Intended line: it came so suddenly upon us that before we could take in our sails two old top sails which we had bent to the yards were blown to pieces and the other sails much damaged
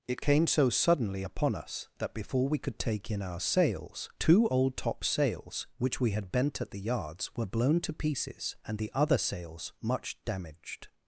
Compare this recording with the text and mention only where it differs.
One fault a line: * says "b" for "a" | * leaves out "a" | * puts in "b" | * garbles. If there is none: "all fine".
* says "at" for "to"